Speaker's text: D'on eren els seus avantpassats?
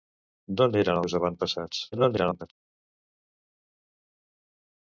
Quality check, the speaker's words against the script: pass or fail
fail